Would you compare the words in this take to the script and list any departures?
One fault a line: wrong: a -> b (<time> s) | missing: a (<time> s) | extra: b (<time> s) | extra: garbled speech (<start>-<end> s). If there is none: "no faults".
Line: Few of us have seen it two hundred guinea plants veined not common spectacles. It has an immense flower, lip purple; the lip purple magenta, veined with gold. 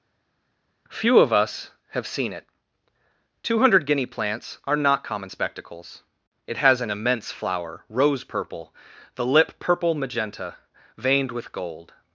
wrong: veined -> are (4.6 s)
wrong: lip -> rose (7.9 s)